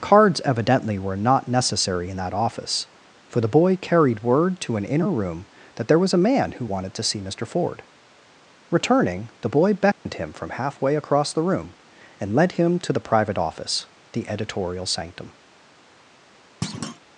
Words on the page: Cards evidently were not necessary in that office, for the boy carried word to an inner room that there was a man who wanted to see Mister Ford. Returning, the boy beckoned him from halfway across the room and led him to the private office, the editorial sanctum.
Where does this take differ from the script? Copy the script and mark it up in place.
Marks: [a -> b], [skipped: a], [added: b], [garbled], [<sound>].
Cards evidently were not necessary in that office, for the boy carried word to an inner room that there was a man who wanted to see Mister Ford. Returning, the boy beckoned [dropout] him from halfway across the room and led him to the private office, the editorial sanctum. [thud]